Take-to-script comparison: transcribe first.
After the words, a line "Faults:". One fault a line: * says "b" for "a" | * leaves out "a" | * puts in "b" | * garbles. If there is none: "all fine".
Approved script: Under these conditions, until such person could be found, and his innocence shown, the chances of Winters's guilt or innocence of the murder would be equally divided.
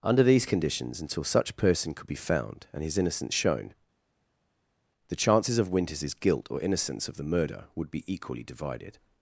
Under these conditions, until such person could be found, and his innocence shown, the chances of Winters's guilt or innocence of the murder would be equally divided.
Faults:
all fine